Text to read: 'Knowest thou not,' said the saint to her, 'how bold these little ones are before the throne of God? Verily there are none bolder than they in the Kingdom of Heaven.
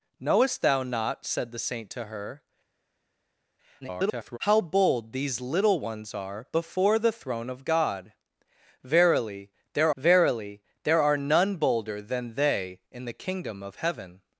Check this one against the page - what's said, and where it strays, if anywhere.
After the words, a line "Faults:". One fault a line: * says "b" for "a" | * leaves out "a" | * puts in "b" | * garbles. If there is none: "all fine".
'Knowest thou not,' said the saint to her, [garbled] 'how bold these little ones are before the throne of God? Verily there verily there are none bolder than they in the Kingdom of Heaven.
Faults:
* garbles
* puts in "verily there"